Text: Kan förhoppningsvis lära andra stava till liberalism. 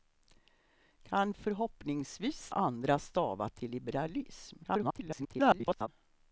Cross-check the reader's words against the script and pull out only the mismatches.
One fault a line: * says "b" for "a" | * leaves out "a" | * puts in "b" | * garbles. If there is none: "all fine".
* leaves out "lära"
* garbles